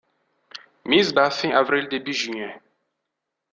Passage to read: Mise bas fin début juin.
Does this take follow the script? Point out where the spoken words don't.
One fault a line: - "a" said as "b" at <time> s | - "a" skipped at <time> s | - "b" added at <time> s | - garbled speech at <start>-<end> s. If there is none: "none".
- "avril" added at 1.5 s